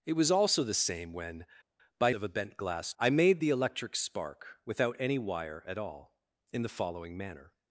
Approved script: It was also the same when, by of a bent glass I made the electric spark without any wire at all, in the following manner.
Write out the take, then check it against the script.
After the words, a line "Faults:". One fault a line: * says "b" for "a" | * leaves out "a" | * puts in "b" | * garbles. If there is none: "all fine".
It was also the same when, by of a bent glass I made the electric spark without any wire at all, in the following manner.
Faults:
all fine